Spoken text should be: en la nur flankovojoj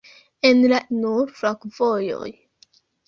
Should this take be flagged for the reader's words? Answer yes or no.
no